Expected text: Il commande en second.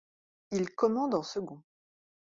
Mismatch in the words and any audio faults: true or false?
false